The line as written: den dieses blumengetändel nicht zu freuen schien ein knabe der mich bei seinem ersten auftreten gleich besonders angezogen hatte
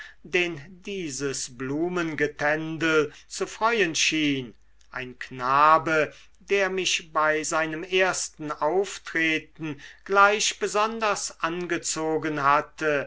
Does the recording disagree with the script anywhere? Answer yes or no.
yes